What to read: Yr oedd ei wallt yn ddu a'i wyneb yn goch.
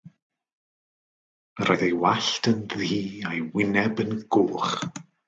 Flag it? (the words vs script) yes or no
no